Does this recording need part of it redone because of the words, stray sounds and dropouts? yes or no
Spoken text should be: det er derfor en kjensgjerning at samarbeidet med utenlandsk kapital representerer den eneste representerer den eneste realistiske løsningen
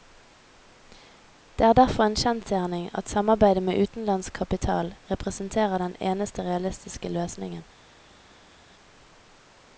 yes